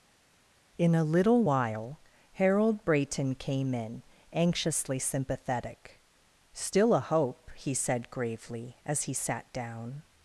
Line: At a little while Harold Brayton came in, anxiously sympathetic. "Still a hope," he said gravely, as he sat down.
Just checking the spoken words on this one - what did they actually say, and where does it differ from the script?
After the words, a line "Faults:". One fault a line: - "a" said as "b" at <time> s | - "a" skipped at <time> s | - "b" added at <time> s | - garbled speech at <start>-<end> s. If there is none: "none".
In a little while Harold Brayton came in, anxiously sympathetic. "Still a hope," he said gravely, as he sat down.
Faults:
- "At" said as "In" at 0.8 s